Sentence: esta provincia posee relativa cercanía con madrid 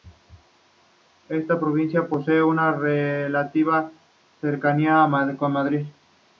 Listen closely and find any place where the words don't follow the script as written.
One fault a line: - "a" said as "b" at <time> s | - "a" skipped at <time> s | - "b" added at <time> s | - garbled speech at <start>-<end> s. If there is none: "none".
- "una" added at 2.4 s